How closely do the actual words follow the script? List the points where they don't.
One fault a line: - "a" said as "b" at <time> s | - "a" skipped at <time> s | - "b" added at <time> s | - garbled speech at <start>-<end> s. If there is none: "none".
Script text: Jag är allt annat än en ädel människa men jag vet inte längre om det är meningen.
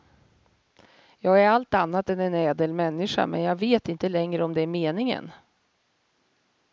none